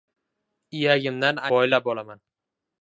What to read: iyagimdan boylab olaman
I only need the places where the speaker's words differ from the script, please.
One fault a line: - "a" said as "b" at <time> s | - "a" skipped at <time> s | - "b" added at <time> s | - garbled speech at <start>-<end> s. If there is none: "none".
none